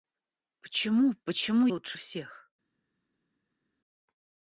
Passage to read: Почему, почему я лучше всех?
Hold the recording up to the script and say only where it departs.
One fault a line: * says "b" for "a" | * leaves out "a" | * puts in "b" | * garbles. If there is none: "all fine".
* leaves out "я"